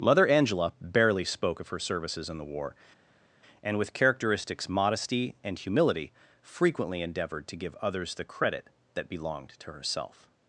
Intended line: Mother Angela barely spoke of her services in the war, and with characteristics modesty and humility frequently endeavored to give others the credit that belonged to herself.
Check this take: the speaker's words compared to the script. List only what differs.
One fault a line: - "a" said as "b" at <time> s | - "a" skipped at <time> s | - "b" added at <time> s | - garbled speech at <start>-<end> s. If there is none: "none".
none